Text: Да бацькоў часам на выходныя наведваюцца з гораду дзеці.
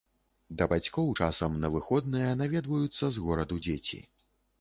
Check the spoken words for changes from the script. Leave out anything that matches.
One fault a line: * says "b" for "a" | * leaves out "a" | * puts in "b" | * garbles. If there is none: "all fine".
all fine